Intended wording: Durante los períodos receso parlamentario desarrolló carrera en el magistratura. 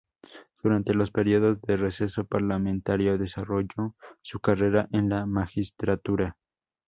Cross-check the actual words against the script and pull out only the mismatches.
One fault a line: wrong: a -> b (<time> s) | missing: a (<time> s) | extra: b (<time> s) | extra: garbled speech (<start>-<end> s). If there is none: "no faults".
extra: de (1.6 s)
extra: su (4.2 s)
wrong: el -> la (5.1 s)